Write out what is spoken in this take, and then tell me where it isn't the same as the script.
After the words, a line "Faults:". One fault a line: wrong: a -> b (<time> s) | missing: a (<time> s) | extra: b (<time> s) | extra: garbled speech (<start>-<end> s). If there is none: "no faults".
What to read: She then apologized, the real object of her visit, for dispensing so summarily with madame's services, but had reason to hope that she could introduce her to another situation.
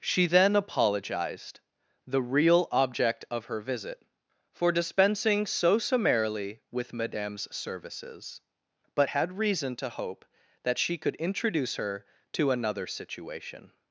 She then apologized, the real object of her visit, for dispensing so summarily with madame's services, but had reason to hope that she could introduce her to another situation.
Faults:
no faults